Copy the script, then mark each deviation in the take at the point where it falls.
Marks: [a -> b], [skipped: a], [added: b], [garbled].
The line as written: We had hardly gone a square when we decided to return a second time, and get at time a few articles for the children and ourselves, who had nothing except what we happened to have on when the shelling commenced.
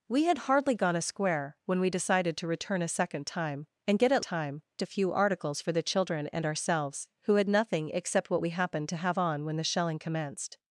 We had hardly gone a square when we decided to return a second time, and get at time a few articles for the children and ourselves, who had nothing except what we happened to have on when the shelling commenced.